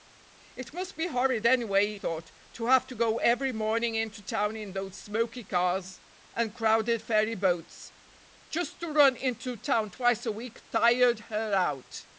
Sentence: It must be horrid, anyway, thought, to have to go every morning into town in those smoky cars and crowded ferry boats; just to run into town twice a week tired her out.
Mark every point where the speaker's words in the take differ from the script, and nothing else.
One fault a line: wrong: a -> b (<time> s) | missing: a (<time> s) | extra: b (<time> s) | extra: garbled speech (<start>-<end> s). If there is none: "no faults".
no faults